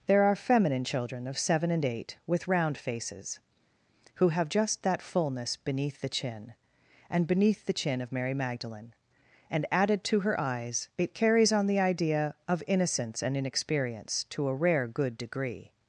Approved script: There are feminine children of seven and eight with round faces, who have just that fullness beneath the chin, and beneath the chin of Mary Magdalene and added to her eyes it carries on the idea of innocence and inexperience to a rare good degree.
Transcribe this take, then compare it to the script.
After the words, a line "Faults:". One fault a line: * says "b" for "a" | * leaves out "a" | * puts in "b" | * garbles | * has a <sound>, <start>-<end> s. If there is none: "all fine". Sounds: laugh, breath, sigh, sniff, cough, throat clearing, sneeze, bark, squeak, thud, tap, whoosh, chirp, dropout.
There are feminine children of seven and eight with round faces, who have just that fullness beneath the chin, and beneath the chin of Mary Magdalene and added to her eyes it carries on the idea of innocence and inexperience to a rare good degree.
Faults:
all fine